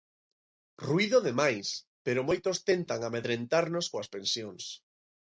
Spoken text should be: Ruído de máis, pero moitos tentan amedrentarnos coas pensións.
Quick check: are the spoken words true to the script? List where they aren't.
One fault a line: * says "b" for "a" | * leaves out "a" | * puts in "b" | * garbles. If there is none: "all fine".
all fine